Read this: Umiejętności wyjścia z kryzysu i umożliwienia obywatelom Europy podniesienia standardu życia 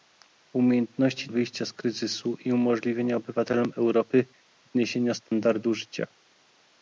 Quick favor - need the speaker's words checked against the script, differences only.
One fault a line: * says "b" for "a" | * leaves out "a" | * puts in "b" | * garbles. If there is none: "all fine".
all fine